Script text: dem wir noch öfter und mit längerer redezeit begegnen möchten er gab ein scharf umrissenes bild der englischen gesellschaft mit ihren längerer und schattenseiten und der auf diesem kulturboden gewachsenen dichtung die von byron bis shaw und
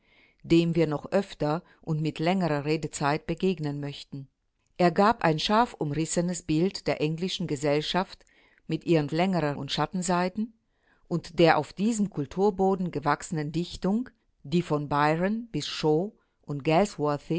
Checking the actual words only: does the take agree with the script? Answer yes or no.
yes